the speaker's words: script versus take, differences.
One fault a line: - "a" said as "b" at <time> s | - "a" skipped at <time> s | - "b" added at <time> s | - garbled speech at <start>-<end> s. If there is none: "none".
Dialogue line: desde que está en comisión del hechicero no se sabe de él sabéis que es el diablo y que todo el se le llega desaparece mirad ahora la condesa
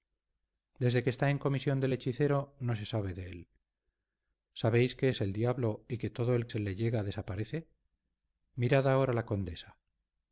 none